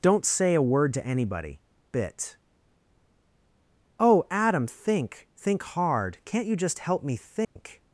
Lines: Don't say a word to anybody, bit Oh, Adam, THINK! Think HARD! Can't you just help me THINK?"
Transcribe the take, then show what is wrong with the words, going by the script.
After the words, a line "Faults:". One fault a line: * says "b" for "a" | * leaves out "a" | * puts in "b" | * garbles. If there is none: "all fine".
Don't say a word to anybody, bit Oh, Adam, THINK! Think HARD! Can't you just help me THINK?"
Faults:
all fine